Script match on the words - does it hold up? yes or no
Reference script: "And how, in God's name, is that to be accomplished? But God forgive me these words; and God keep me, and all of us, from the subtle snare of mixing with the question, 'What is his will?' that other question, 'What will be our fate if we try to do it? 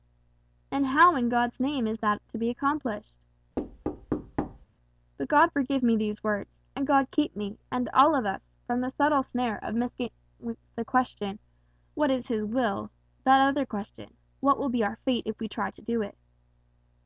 yes